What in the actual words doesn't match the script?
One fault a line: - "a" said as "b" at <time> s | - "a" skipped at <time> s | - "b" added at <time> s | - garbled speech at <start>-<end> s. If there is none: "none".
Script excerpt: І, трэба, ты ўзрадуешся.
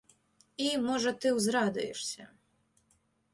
- "трэба" said as "можа" at 0.8 s